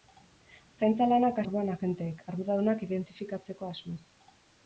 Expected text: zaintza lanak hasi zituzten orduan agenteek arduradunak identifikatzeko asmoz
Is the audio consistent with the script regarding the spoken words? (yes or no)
no